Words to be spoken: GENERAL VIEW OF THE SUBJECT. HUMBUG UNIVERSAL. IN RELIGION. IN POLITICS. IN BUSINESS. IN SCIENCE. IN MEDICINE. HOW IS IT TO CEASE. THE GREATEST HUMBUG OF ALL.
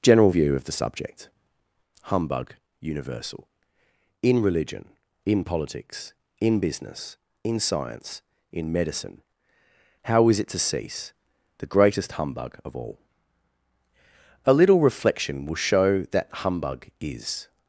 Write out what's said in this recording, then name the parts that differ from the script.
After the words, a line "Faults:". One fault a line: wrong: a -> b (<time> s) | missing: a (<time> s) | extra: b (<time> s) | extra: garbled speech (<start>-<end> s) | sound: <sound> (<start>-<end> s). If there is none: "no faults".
GENERAL VIEW OF THE SUBJECT. HUMBUG UNIVERSAL. IN RELIGION. IN POLITICS. IN BUSINESS. IN SCIENCE. IN MEDICINE. HOW IS IT TO CEASE. THE GREATEST HUMBUG OF ALL. A little reflection will show that humbug is
Faults:
extra: A little reflection will show that humbug is (14.4 s)